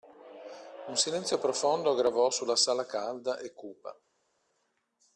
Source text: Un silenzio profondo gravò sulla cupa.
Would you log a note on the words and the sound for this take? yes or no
yes